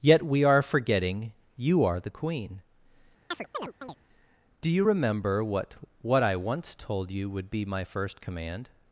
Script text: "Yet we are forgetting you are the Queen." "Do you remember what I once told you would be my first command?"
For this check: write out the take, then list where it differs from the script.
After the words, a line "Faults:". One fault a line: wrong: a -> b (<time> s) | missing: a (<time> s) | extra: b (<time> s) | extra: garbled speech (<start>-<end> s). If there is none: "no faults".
"Yet we are forgetting you are the Queen." "Do you remember what what I once told you would be my first command?"
Faults:
extra: what (6.0 s)